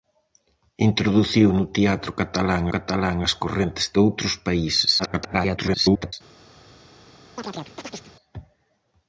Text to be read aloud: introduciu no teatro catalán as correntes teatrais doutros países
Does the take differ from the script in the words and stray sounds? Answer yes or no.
yes